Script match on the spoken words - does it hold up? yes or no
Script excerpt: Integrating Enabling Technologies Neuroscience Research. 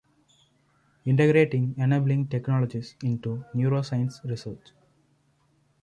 no